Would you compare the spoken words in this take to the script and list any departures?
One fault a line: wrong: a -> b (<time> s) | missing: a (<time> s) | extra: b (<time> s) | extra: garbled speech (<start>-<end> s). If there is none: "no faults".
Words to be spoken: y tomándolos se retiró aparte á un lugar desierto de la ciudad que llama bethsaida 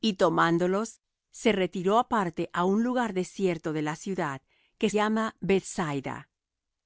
no faults